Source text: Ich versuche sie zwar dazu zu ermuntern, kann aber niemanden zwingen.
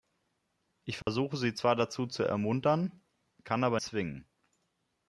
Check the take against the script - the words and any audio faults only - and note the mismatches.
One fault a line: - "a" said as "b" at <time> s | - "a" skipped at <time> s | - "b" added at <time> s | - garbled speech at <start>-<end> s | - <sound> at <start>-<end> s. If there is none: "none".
- dropout at 1.0-1.1 s
- "niemanden" skipped at 3.8 s